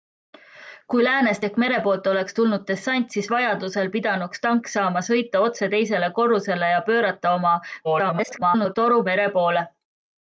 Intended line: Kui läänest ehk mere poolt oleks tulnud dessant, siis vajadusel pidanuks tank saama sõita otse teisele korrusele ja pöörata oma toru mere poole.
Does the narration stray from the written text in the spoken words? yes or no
yes